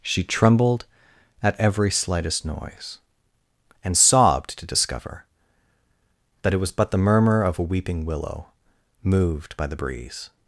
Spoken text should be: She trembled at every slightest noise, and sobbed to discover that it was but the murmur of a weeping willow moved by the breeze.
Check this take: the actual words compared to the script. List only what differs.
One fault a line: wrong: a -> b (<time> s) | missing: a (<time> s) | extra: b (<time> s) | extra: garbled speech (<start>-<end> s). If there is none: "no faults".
no faults